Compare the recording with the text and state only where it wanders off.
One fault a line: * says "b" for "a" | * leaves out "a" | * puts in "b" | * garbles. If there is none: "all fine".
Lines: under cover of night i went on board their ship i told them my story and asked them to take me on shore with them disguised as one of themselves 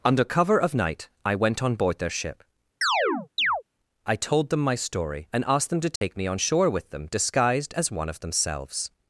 all fine